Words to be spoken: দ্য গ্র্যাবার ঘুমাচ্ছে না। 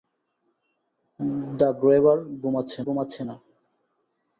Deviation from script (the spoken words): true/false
true